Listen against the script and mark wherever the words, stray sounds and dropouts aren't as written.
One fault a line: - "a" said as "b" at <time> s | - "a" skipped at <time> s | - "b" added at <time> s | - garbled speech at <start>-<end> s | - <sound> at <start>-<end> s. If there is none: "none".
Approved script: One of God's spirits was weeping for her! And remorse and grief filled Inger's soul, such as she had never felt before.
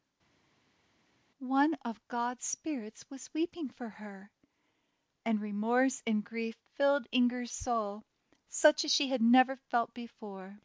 none